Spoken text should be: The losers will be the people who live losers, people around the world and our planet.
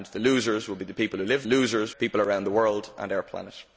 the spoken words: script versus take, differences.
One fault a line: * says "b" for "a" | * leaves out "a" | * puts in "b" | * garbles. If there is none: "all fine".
all fine